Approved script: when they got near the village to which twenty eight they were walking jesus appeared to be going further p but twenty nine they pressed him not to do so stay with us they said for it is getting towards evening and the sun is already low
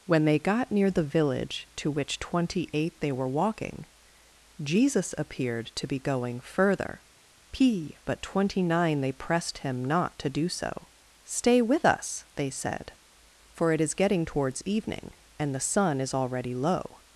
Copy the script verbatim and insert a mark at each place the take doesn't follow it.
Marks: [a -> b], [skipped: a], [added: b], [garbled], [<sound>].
when they got near the village to which twenty eight they were walking jesus appeared to be going further p but twenty nine they pressed him not to do so stay with us they said for it is getting towards evening and the sun is already low